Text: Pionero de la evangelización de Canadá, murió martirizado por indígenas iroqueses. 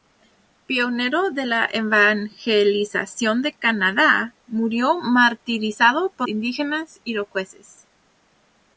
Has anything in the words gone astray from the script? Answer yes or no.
no